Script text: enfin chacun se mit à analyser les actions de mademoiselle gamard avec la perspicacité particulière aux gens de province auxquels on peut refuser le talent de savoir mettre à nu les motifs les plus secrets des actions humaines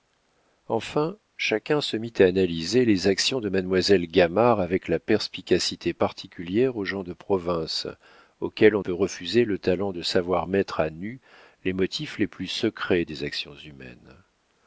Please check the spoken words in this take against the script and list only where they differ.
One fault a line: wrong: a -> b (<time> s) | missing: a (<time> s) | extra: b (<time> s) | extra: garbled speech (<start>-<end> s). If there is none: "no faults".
no faults